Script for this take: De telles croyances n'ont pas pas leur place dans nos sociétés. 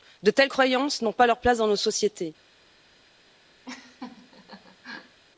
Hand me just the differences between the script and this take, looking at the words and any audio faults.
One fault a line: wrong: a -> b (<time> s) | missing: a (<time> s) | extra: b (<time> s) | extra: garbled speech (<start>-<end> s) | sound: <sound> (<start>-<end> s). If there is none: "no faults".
missing: pas (1.3 s)
sound: laugh (3.6-5.2 s)